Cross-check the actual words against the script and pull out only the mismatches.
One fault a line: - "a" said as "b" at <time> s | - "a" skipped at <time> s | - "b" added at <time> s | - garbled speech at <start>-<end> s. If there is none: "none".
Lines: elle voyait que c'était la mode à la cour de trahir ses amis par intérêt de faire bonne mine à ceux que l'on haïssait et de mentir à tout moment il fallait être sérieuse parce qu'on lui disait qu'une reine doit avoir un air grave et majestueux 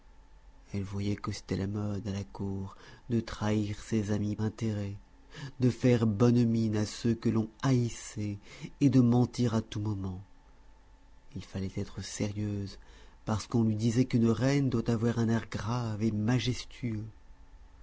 - "par" skipped at 4.4 s